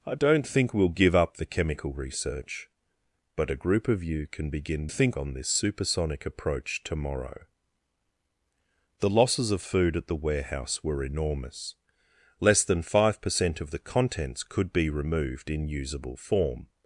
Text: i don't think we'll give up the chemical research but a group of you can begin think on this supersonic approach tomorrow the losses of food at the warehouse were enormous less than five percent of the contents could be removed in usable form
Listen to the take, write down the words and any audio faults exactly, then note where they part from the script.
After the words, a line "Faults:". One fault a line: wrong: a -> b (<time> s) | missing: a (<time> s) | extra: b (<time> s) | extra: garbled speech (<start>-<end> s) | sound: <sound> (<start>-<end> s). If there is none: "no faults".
i don't think we'll give up the chemical research but a group of you can begin think on this supersonic approach tomorrow the losses of food at the warehouse were enormous less than five percent of the contents could be removed in usable form
Faults:
no faults